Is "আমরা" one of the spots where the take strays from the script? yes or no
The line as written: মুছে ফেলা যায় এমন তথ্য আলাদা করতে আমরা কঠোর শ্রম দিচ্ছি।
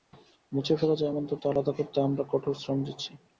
no